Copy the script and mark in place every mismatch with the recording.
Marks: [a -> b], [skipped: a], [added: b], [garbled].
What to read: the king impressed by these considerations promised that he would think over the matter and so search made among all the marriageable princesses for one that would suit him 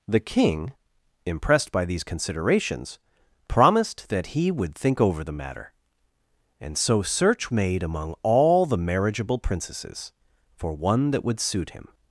the king impressed by these considerations promised that he would think over the matter and so search made among all the marriageable princesses for one that would suit him